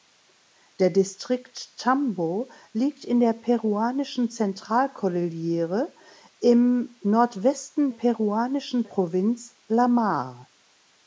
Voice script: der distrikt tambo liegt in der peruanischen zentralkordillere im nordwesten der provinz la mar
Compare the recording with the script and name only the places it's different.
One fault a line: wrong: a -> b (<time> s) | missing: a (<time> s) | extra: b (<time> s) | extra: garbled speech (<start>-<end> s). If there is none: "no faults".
wrong: der -> peruanischen (7.9 s)